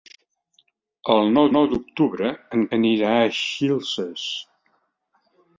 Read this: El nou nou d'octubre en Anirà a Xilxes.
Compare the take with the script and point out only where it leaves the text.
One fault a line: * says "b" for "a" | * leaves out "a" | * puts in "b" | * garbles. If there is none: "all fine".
all fine